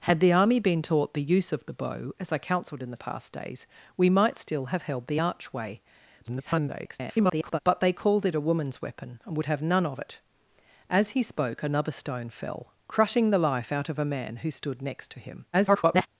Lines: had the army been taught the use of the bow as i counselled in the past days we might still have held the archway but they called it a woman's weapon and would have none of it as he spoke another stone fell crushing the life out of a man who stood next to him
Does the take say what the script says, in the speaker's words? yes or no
no